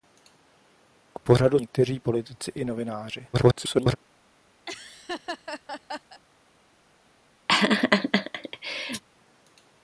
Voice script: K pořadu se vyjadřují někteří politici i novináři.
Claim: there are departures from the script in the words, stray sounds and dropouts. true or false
true